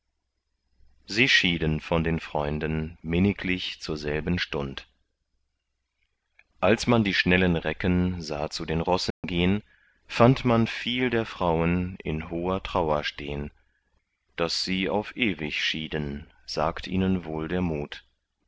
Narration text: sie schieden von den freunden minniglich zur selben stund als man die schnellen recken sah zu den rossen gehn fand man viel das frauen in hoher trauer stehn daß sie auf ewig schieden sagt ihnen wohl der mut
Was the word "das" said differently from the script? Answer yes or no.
yes